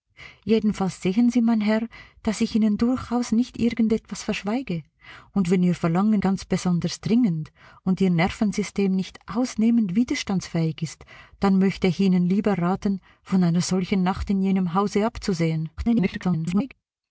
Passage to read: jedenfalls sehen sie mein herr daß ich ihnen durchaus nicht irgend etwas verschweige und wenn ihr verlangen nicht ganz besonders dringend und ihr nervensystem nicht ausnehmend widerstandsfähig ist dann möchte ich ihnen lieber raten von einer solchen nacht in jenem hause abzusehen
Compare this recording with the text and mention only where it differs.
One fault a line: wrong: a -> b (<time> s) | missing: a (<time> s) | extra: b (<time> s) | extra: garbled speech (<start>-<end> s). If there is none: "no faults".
missing: nicht (6.2 s)
extra: garbled speech (15.8-16.7 s)